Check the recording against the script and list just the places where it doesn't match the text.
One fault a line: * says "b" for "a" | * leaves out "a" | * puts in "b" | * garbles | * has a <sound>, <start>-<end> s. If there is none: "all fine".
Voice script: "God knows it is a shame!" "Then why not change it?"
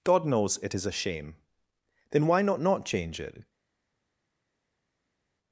* puts in "not"